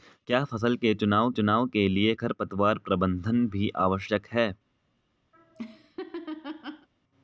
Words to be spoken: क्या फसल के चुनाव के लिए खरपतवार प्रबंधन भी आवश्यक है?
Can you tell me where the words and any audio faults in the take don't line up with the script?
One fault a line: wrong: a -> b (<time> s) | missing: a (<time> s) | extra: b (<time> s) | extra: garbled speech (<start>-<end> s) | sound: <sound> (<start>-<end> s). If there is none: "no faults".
extra: चुनाव (1.3 s)
sound: laugh (5.3-6.9 s)